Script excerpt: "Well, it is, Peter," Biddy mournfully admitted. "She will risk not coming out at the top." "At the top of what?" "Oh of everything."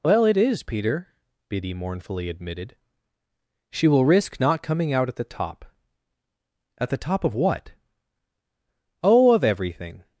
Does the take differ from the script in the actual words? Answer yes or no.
no